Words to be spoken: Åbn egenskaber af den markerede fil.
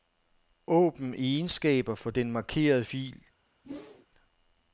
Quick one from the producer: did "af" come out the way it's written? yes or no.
no